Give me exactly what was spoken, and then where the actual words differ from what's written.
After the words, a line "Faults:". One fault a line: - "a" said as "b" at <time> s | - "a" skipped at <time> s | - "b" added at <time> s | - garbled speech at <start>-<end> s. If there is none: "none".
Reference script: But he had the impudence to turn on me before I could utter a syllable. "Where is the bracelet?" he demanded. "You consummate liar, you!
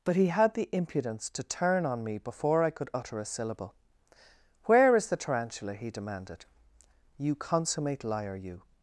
But he had the impudence to turn on me before I could utter a syllable. "Where is the tarantula?" he demanded. "You consummate liar, you!
Faults:
- "bracelet" said as "tarantula" at 5.2 s